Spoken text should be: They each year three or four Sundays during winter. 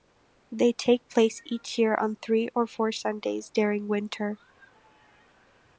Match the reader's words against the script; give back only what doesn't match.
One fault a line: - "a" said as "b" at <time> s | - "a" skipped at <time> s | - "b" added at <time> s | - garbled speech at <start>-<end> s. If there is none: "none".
- "take place" added at 0.7 s
- "on" added at 1.9 s